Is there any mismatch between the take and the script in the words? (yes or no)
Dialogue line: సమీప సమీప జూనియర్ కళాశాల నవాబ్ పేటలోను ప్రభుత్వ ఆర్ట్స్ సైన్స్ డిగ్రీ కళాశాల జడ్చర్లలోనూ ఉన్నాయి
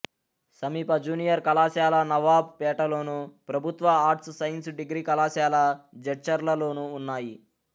yes